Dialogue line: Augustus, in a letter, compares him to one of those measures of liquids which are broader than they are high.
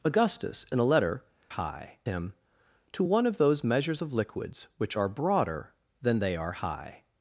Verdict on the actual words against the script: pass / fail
fail